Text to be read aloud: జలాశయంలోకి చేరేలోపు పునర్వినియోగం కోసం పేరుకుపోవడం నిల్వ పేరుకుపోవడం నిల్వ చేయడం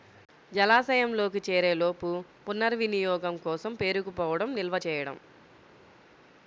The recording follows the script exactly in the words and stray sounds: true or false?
false